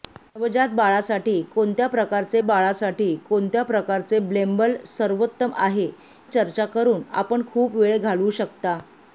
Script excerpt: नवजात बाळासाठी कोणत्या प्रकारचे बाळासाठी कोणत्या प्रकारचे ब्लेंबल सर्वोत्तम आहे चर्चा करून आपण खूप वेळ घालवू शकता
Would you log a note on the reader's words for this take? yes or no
no